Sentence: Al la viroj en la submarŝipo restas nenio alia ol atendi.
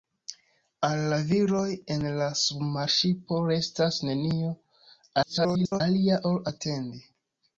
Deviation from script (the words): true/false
true